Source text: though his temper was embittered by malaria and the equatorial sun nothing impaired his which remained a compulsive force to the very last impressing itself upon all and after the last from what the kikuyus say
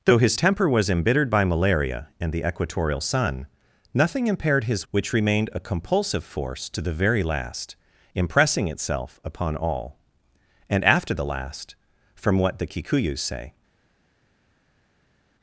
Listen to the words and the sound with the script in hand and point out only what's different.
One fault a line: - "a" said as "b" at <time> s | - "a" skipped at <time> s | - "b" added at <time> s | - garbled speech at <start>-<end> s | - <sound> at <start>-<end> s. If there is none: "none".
none